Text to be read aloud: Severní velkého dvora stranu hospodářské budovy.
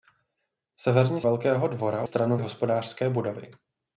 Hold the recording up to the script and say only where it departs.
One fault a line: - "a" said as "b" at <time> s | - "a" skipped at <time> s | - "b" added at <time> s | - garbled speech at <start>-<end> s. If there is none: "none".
none